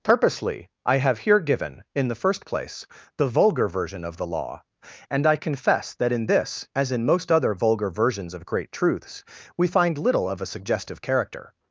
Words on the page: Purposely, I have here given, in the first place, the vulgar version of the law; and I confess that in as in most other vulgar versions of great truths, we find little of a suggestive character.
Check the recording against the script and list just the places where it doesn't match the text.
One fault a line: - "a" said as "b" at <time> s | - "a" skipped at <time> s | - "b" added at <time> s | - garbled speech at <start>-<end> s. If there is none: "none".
- "this" added at 6.2 s